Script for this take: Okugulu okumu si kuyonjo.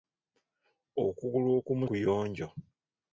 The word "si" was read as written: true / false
false